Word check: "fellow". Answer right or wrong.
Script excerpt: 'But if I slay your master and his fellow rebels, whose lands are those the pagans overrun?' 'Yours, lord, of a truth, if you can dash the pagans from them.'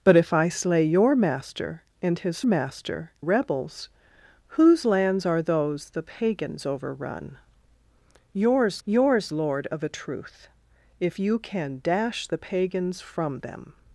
wrong